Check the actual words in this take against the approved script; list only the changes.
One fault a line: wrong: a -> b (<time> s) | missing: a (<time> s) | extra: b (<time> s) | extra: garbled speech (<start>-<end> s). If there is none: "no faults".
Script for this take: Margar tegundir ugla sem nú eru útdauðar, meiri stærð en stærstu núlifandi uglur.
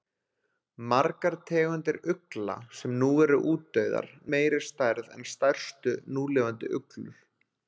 no faults